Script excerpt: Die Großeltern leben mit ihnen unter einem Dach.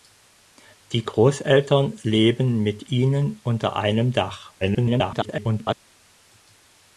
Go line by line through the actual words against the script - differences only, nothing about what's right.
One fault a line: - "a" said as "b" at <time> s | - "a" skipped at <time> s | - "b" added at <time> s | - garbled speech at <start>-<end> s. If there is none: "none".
- garbled speech at 4.6-5.8 s